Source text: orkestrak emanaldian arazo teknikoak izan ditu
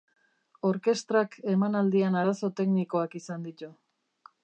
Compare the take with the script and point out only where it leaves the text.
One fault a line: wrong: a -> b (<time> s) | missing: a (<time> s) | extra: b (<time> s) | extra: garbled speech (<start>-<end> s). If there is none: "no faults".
no faults